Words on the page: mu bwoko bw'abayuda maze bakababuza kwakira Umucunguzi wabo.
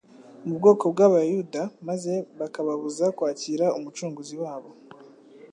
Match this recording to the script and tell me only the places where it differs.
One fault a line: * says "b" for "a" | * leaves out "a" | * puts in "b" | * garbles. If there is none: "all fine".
all fine